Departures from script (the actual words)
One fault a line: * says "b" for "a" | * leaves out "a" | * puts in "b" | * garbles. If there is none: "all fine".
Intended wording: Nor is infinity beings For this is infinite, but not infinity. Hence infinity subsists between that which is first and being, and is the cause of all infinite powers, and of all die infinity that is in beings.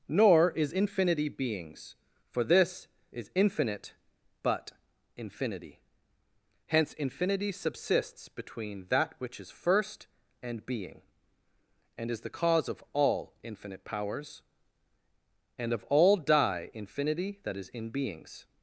* leaves out "not"